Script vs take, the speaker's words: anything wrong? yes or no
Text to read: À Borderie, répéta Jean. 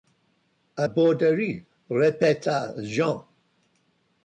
no